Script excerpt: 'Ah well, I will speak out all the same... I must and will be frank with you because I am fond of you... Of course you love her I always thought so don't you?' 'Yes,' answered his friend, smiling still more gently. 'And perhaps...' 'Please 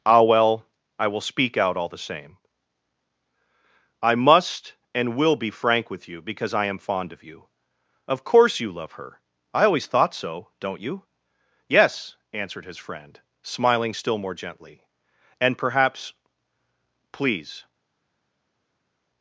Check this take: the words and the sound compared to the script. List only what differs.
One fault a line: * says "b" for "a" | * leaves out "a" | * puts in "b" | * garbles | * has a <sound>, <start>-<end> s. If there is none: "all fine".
all fine